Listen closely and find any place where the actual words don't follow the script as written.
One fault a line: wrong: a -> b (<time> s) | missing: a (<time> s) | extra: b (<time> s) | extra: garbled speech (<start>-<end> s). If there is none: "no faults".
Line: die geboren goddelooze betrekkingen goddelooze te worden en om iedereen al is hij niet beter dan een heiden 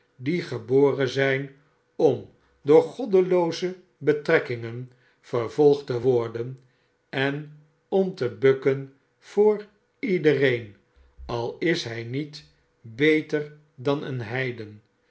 extra: zijn om door (1.1 s)
wrong: goddelooze -> vervolgd (5.2 s)
extra: te bukken voor (8.1 s)